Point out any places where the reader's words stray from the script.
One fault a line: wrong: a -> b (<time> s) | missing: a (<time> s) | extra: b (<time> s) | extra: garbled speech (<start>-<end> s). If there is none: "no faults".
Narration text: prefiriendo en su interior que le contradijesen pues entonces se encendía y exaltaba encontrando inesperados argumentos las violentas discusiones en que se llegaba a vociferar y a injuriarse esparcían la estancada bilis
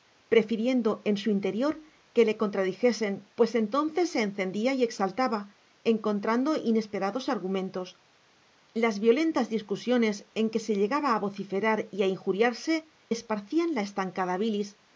no faults